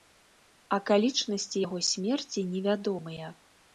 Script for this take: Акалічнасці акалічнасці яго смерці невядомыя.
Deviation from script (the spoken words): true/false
true